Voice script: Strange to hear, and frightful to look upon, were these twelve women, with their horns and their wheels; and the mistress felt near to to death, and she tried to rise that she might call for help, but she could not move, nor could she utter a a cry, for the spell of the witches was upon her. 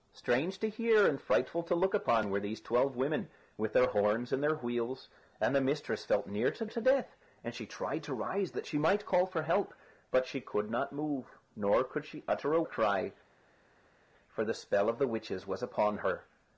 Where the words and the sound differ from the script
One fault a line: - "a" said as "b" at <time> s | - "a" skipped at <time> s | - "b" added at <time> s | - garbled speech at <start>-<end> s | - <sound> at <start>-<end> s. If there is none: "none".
none